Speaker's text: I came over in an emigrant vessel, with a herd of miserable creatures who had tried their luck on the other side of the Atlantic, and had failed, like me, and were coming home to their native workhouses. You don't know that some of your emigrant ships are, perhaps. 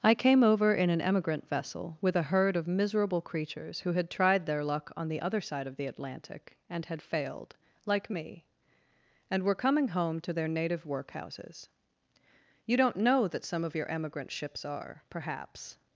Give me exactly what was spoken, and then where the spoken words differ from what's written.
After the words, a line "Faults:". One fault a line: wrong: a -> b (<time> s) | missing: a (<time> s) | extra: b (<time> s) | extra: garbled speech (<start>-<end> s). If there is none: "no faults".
I came over in an emigrant vessel, with a herd of miserable creatures who had tried their luck on the other side of the Atlantic, and had failed, like me, and were coming home to their native workhouses. You don't know that some of your emigrant ships are, perhaps.
Faults:
no faults